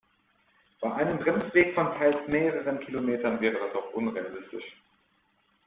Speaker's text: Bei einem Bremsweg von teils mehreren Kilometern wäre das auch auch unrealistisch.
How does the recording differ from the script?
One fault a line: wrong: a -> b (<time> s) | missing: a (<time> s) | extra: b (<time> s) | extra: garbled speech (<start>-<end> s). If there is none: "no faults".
missing: auch (3.9 s)